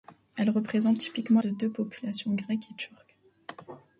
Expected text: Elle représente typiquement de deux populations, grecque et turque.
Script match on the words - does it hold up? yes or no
yes